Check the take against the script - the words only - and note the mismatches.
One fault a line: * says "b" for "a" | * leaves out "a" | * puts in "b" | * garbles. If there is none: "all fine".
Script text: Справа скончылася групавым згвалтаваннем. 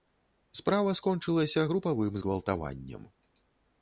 all fine